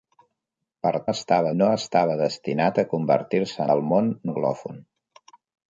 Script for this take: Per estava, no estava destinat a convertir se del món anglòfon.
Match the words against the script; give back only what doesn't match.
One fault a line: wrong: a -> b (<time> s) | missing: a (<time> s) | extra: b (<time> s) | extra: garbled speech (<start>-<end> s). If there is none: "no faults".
no faults